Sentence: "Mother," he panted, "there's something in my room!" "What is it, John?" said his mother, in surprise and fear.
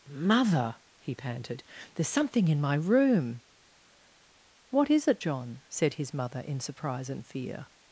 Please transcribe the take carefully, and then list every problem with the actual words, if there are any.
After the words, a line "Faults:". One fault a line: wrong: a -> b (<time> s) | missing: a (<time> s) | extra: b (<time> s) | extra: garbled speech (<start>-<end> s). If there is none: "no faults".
"Mother," he panted, "there's something in my room!" "What is it, John?" said his mother, in surprise and fear.
Faults:
no faults